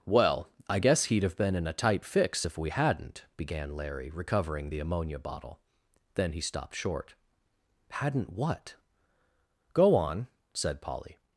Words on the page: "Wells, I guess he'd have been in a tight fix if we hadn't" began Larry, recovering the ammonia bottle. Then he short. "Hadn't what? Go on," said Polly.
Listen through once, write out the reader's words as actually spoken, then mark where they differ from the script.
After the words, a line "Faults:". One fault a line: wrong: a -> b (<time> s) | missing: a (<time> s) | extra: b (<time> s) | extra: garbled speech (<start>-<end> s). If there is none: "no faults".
"Well, I guess he'd have been in a tight fix if we hadn't" began Larry, recovering the ammonia bottle. Then he stopped short. "Hadn't what? Go on," said Polly.
Faults:
wrong: Wells -> Well (0.1 s)
extra: stopped (6.4 s)